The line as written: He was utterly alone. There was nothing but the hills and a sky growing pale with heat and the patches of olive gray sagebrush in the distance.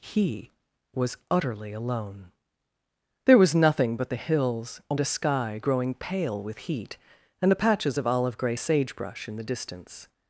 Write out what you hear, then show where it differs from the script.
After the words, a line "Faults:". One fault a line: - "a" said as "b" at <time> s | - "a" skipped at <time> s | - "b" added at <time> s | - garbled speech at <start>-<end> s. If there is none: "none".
He was utterly alone. There was nothing but the hills and a sky growing pale with heat and the patches of olive gray sagebrush in the distance.
Faults:
none